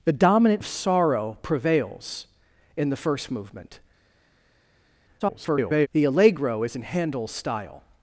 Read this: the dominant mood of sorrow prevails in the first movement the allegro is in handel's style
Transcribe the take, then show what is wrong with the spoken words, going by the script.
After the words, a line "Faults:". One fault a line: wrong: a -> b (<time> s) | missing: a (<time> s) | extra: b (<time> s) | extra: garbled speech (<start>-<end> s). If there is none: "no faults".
the dominant of sorrow prevails in the first movement [garbled] the allegro is in handel's style
Faults:
missing: mood (0.6 s)
extra: garbled speech (5.2-5.9 s)